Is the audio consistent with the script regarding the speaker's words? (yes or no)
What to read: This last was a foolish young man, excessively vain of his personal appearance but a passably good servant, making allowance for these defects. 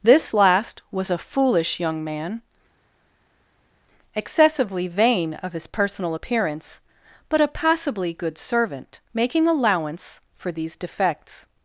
yes